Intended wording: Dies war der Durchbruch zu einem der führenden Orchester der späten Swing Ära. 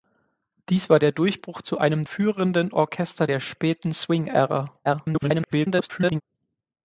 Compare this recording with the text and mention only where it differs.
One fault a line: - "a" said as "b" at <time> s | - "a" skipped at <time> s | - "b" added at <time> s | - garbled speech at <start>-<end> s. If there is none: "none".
- "der" skipped at 2.0 s
- garbled speech at 4.8-6.2 s